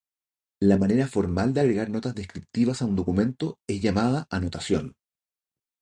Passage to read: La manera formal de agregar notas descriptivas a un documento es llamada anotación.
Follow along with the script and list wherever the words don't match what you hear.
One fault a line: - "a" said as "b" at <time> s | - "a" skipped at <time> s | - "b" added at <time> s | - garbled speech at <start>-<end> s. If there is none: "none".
none